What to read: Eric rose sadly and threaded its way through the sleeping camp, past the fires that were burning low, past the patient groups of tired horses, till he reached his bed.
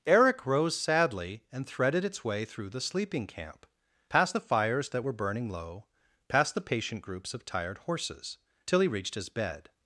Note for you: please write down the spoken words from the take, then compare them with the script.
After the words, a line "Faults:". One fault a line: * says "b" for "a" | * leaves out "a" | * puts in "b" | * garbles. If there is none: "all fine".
Eric rose sadly and threaded its way through the sleeping camp, past the fires that were burning low, past the patient groups of tired horses, till he reached his bed.
Faults:
all fine